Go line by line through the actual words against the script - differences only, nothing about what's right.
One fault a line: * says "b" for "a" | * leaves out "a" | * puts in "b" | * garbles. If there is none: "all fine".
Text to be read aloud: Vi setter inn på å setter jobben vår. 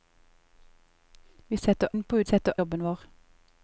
all fine